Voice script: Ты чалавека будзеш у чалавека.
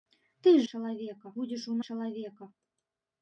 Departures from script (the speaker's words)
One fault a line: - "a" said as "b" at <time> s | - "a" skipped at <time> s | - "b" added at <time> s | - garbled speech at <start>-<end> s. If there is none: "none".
none